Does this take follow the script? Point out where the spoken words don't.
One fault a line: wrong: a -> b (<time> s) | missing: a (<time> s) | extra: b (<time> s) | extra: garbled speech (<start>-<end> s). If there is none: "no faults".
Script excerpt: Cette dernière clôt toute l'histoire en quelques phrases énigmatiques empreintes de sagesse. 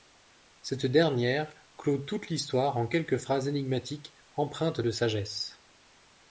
no faults